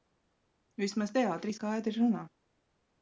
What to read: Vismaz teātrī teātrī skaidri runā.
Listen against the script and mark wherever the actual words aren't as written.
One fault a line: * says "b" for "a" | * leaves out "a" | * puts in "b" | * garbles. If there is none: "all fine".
* leaves out "teātrī"